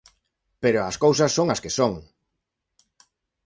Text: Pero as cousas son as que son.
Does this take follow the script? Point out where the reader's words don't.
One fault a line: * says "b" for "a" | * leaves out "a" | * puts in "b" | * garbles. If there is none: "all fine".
all fine